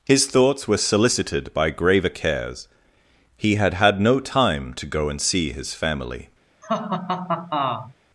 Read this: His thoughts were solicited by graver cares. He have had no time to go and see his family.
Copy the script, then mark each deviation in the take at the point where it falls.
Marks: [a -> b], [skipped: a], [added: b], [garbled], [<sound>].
His thoughts were solicited by graver cares. He [have -> had] had no time to go and see his family. [laugh]